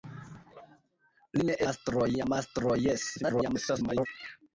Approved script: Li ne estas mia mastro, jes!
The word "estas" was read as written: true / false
false